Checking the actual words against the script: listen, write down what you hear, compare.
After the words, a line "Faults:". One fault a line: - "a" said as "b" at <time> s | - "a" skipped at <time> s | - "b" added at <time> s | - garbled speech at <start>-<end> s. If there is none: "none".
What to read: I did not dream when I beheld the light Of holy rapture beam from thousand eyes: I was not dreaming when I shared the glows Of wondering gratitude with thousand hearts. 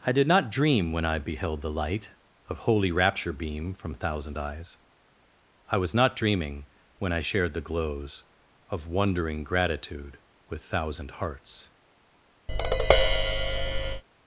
I did not dream when I beheld the light Of holy rapture beam from thousand eyes: I was not dreaming when I shared the glows Of wondering gratitude with thousand hearts.
Faults:
none